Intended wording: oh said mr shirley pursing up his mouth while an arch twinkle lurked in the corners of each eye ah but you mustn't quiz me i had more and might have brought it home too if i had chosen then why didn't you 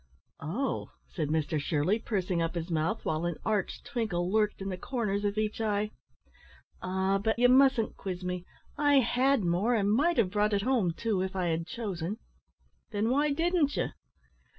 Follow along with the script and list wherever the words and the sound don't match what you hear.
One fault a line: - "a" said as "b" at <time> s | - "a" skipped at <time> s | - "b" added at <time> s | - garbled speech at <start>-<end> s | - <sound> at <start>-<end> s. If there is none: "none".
none